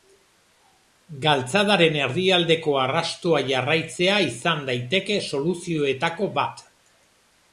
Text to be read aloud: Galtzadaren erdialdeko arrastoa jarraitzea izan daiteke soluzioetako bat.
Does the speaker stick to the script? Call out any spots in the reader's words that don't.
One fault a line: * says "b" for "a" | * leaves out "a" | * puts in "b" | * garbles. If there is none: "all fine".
all fine